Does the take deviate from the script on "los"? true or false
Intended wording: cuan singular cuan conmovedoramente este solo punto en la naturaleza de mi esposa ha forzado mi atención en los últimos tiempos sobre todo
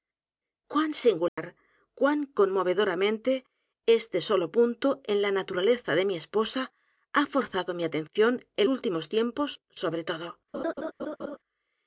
true